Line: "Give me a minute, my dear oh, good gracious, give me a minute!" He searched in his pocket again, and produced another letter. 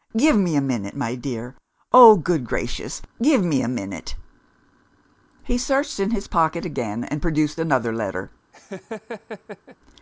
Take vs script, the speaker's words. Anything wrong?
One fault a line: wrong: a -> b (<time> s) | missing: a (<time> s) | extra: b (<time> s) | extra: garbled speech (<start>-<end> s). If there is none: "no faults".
no faults